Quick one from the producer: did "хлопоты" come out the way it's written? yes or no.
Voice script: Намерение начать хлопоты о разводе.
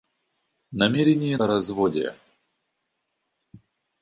no